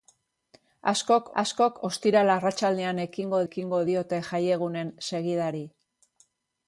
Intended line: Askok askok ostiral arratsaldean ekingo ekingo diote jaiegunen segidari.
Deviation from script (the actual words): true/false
false